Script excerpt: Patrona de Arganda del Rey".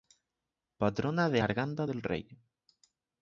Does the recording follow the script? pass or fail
pass